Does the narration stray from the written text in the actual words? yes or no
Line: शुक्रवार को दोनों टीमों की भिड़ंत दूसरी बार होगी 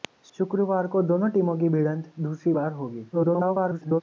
yes